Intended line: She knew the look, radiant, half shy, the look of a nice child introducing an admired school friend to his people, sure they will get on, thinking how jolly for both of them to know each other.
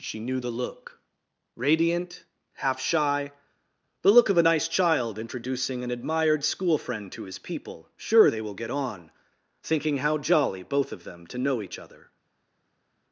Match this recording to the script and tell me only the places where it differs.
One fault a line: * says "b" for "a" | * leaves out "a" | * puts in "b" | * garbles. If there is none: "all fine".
* leaves out "for"